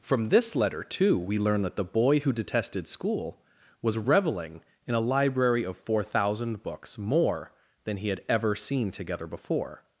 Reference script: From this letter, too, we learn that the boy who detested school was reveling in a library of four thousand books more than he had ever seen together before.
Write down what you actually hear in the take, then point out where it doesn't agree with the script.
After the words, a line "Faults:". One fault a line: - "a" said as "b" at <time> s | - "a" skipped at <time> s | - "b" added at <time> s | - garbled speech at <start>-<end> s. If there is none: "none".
From this letter, too, we learn that the boy who detested school was reveling in a library of four thousand books more than he had ever seen together before.
Faults:
none